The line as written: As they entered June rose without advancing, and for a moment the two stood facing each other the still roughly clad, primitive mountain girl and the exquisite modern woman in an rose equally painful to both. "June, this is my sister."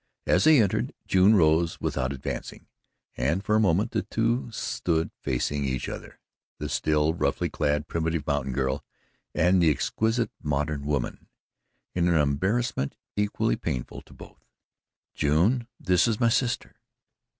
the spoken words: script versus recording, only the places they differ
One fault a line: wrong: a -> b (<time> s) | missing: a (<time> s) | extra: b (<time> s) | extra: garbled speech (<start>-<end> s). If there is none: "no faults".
wrong: rose -> embarrassment (12.2 s)